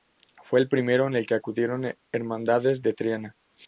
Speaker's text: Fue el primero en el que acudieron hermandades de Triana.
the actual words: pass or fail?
pass